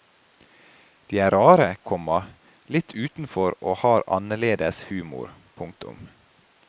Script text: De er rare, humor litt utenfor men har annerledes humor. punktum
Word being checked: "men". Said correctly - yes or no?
no